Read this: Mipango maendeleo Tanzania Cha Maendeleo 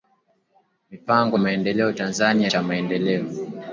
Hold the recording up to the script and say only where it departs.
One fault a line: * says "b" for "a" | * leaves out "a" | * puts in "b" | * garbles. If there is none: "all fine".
all fine